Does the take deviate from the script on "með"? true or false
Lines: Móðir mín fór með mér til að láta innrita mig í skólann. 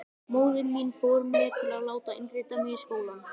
true